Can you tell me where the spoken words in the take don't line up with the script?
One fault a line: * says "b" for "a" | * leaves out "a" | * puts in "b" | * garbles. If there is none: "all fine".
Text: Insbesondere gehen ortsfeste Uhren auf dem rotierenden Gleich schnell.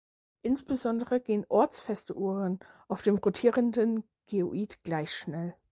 * puts in "Geoid"